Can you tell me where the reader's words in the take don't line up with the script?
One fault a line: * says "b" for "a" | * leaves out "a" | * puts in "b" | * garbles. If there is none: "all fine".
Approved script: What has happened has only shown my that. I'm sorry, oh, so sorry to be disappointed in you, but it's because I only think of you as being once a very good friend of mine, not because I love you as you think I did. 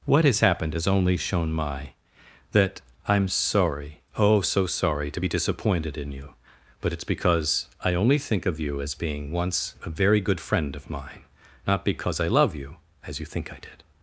all fine